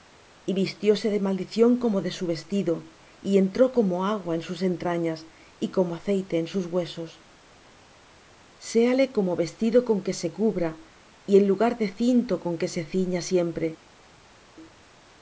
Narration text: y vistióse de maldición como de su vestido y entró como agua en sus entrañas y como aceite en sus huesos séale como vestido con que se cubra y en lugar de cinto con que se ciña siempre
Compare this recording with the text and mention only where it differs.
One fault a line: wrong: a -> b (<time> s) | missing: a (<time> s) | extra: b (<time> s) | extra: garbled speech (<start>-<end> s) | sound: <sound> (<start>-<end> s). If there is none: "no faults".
no faults